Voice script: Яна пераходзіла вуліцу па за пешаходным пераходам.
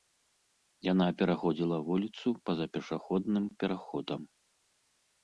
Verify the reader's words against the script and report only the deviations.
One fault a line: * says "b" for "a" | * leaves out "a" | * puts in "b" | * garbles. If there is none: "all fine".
all fine